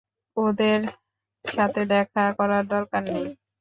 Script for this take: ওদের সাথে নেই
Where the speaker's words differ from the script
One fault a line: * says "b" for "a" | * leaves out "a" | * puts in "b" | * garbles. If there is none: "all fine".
* puts in "দেখা করার দরকার"